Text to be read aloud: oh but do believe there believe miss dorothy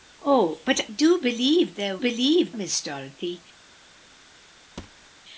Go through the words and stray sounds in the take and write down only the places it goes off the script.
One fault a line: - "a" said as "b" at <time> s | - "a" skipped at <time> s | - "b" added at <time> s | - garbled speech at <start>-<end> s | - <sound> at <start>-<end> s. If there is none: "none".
- thud at 4.8-5.1 s